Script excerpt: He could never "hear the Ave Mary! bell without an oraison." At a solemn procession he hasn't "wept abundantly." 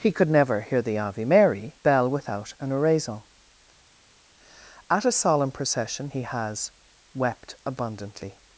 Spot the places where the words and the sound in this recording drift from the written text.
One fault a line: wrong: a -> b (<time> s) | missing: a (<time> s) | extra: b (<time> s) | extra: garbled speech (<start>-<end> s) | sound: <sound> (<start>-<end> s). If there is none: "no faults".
wrong: hasn't -> has (6.2 s)